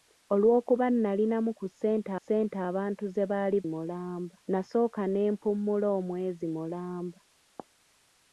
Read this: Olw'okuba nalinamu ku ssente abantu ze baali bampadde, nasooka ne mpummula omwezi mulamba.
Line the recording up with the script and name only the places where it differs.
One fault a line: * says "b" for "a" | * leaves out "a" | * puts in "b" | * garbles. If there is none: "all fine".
* puts in "ssente"
* says "mulamba" for "bampadde"